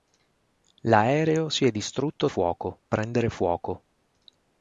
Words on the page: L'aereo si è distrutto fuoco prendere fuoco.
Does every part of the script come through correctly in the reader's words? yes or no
yes